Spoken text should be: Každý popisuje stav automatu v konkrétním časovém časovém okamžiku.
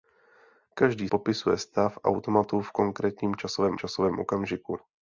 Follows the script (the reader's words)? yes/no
yes